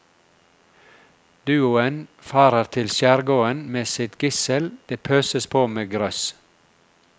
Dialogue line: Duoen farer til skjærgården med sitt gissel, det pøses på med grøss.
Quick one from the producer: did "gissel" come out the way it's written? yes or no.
yes